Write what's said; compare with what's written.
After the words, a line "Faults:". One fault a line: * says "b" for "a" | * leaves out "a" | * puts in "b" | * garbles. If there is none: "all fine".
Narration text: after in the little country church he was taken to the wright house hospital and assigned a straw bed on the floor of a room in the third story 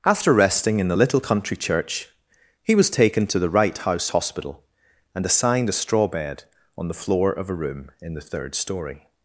after resting in the little country church he was taken to the wright house hospital and assigned a straw bed on the floor of a room in the third story
Faults:
* puts in "resting"